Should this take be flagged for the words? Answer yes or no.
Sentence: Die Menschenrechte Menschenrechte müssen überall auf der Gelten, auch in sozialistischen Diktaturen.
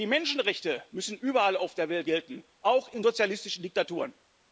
yes